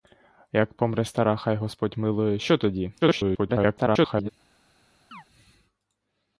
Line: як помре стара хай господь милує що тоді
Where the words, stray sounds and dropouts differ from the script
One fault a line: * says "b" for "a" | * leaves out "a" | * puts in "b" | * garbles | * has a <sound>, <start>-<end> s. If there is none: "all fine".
* garbles
* has a chirp, 5.1-5.2 s